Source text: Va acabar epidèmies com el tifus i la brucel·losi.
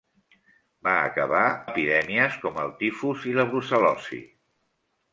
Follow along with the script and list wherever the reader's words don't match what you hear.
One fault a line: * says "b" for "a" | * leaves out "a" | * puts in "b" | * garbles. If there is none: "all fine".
all fine